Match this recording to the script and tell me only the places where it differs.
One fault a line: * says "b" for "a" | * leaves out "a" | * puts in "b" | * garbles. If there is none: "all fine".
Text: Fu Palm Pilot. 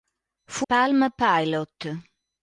all fine